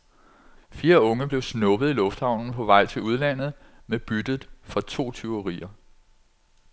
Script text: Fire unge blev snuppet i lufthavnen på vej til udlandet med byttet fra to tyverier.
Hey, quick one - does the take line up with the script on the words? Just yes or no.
yes